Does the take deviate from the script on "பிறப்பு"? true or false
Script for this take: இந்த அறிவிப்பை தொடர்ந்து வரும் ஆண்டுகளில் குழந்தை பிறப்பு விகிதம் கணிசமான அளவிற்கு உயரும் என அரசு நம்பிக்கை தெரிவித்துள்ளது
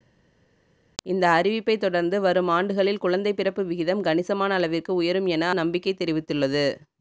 false